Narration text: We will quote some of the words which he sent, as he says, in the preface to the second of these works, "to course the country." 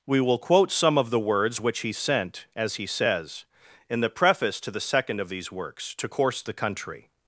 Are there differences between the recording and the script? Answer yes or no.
no